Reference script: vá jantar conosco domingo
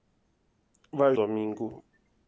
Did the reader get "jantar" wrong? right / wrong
wrong